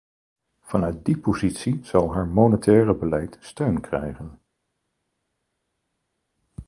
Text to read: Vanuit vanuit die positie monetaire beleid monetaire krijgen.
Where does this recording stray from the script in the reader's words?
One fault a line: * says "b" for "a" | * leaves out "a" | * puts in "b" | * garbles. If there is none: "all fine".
* leaves out "vanuit"
* puts in "zal haar"
* says "steun" for "monetaire"